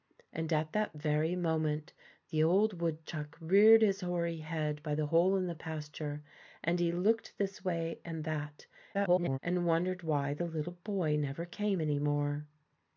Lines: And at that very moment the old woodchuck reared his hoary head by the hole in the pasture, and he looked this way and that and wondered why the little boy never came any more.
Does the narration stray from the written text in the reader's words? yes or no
yes